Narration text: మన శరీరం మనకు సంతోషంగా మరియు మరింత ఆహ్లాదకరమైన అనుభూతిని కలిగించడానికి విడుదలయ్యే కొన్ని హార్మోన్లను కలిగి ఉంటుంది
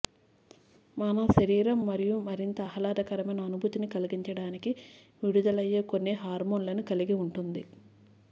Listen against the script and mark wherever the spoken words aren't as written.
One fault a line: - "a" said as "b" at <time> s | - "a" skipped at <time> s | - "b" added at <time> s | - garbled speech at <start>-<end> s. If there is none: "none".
- "మనకు సంతోషంగా" skipped at 1.8 s